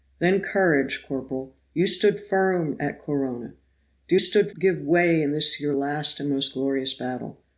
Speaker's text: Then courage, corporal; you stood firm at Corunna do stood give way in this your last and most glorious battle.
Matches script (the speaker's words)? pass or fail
pass